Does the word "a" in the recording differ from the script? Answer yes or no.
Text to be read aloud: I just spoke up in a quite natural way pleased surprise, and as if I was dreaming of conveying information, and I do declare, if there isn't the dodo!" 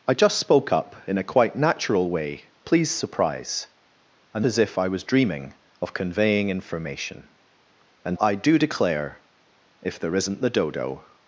no